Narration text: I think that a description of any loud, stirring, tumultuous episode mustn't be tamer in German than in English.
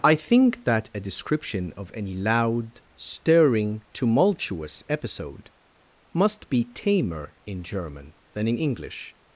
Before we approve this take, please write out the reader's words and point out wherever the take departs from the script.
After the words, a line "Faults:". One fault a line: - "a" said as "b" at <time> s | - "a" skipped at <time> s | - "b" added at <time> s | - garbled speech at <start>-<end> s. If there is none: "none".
I think that a description of any loud, stirring, tumultuous episode must be tamer in German than in English.
Faults:
- "mustn't" said as "must" at 6.1 s